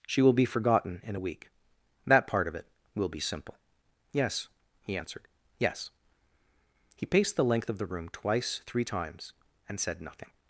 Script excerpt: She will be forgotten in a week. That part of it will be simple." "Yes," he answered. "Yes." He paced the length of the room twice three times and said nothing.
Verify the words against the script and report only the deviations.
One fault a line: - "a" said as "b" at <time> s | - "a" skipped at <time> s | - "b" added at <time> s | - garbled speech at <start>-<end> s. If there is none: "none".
none